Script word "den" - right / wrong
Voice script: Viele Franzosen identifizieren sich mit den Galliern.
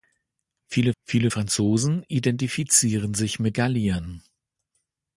wrong